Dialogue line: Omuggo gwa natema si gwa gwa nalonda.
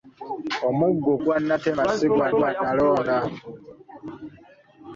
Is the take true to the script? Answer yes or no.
yes